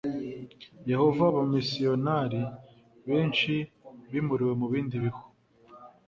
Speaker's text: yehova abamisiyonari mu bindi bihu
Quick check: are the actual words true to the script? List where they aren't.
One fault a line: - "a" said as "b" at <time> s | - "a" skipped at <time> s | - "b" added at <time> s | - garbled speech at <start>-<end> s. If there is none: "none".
- "benshi bimuriwe" added at 3.1 s